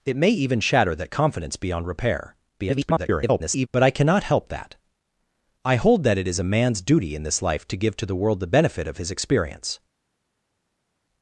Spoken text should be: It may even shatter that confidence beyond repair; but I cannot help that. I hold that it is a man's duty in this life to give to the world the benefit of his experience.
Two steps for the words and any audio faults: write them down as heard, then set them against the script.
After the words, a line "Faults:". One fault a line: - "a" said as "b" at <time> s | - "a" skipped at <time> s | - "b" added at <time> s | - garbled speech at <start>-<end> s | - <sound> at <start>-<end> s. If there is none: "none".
It may even shatter that confidence beyond repair; [garbled] but I cannot help that. I hold that it is a man's duty in this life to give to the world the benefit of his experience.
Faults:
- garbled speech at 2.6-3.7 s